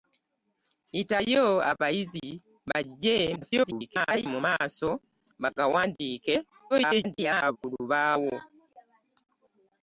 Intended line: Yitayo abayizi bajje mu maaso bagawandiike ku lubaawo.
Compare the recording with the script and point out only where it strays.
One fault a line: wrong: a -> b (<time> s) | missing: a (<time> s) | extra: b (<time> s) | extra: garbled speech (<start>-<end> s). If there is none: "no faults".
extra: garbled speech (3.4-4.3 s)
extra: garbled speech (6.7-7.6 s)